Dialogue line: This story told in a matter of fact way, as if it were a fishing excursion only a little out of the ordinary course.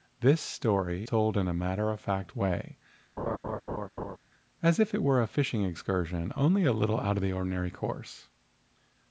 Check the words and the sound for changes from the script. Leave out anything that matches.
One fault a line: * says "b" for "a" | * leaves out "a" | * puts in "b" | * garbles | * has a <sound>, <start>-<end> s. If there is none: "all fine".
* has a laugh, 3.2-4.2 s